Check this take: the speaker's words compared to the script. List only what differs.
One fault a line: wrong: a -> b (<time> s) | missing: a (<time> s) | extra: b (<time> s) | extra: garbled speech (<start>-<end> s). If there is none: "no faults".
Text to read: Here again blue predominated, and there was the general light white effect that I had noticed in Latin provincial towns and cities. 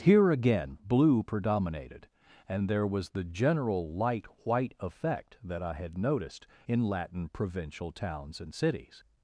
no faults